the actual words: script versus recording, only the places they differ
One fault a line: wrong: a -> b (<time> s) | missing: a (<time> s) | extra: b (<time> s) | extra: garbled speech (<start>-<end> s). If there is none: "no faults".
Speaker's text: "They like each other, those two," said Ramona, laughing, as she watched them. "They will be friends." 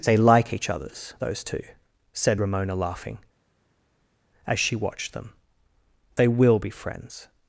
wrong: other -> others (0.7 s)